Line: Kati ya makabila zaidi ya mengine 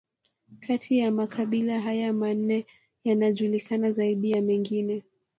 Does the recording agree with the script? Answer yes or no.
no